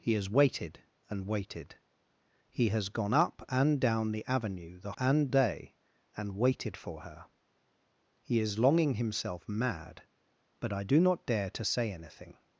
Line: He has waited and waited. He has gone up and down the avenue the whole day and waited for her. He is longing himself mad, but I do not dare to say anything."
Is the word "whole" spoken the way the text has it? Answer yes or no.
no